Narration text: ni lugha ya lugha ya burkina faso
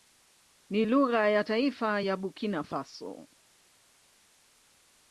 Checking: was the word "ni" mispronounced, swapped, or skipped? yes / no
no